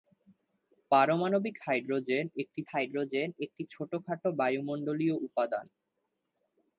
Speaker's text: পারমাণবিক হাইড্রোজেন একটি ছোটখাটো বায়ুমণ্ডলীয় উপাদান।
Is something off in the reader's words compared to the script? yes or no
yes